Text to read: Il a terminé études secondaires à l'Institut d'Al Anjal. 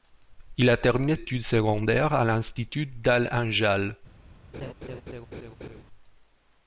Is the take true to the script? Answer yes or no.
yes